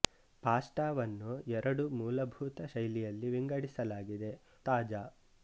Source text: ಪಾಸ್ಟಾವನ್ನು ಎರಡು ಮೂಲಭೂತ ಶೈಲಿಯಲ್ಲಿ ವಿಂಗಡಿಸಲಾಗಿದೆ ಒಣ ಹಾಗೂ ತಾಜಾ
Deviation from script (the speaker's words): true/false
true